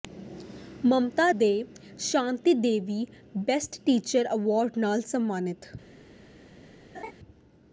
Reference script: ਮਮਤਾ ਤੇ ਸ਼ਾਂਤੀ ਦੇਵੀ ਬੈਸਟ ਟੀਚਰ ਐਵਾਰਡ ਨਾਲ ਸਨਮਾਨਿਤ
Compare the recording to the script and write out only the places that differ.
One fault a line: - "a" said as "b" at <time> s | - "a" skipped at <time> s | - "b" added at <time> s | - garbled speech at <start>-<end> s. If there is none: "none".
none